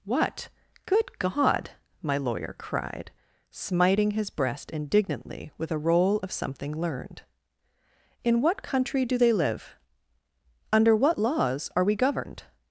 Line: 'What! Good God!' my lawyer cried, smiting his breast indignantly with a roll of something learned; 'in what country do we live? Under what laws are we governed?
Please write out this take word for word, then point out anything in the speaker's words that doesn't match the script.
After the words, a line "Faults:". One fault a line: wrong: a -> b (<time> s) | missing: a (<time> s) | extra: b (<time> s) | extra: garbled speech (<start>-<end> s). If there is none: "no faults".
'What! Good God!' my lawyer cried, smiting his breast indignantly with a roll of something learned; 'in what country do they live? Under what laws are we governed?
Faults:
wrong: we -> they (9.2 s)